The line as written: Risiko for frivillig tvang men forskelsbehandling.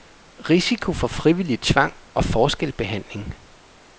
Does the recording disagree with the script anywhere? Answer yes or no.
yes